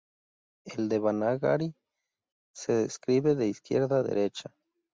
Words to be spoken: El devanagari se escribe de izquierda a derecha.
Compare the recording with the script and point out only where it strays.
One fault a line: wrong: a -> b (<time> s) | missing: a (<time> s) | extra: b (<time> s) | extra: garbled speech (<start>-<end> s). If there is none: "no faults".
no faults